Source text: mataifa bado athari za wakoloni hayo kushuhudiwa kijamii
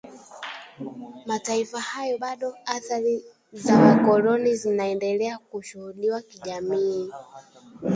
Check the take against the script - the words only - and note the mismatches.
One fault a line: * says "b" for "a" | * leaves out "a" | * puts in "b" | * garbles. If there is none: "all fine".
* puts in "hayo"
* says "zinaendelea" for "hayo"